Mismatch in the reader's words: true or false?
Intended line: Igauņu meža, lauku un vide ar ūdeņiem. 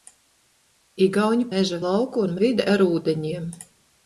false